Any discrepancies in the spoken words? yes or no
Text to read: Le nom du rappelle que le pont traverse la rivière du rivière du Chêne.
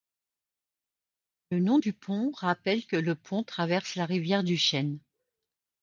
yes